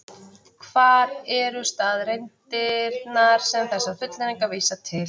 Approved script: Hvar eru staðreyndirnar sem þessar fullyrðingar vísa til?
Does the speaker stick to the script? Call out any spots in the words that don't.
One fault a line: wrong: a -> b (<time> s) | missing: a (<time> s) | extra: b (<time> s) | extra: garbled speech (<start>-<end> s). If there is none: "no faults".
no faults